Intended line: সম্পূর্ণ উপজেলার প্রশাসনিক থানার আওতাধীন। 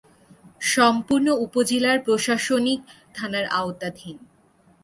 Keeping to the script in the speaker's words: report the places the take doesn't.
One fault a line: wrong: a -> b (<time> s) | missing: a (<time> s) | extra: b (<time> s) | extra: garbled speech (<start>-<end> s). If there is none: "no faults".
no faults